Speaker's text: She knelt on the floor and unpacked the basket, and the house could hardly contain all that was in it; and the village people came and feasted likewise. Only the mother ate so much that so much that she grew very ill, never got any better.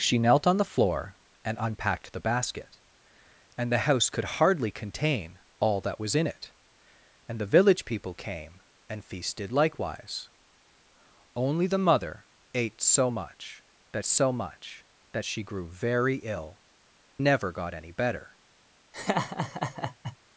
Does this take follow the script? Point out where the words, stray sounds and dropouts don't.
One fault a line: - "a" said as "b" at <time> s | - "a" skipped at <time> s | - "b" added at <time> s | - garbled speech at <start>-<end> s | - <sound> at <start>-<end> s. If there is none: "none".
- laugh at 18.9-20.2 s